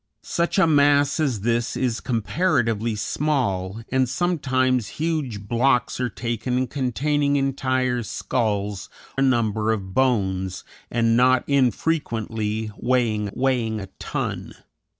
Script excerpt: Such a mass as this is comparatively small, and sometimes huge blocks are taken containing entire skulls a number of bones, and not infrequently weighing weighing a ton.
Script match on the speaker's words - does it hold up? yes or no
yes